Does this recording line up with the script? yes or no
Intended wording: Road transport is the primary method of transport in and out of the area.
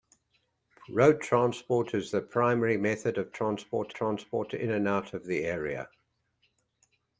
no